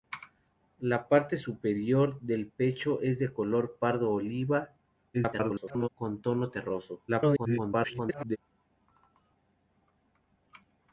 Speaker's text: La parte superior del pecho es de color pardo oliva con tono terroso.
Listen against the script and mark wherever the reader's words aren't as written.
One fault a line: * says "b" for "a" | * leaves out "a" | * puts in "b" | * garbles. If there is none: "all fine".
* garbles
* garbles